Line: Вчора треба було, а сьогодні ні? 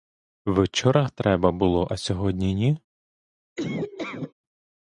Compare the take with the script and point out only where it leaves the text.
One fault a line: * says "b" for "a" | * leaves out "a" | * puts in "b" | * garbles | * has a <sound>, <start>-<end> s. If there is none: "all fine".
* has a laugh, 3.6-4.3 s